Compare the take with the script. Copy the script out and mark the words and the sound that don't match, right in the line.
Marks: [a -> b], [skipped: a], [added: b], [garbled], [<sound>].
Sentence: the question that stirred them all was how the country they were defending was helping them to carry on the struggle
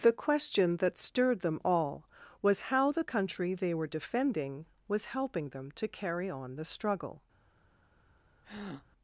the question that stirred them all was how the country they were defending was helping them to carry on the struggle [breath]